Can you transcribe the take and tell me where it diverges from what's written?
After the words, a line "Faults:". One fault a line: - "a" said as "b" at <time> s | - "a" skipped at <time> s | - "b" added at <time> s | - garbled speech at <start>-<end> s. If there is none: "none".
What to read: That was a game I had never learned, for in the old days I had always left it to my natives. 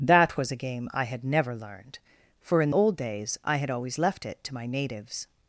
That was a game I had never learned, for in old days I had always left it to my natives.
Faults:
- "the" skipped at 2.7 s